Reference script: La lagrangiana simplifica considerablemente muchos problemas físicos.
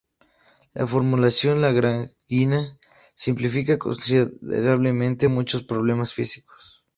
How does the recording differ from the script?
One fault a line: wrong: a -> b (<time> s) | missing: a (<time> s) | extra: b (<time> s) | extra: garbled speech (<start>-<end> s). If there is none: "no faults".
extra: formulación (0.9 s)